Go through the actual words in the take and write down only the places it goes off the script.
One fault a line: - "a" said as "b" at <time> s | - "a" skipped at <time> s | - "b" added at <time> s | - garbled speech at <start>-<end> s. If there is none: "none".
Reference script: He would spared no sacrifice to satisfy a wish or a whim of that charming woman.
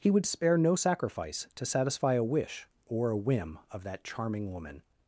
- "spared" said as "spare" at 0.2 s